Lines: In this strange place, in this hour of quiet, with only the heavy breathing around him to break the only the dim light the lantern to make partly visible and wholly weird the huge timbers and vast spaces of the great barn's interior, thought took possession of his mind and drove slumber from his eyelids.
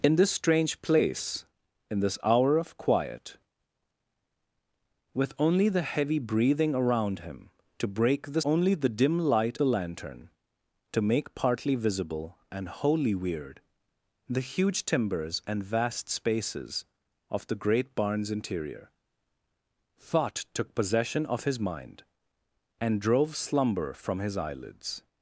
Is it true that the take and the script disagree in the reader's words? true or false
false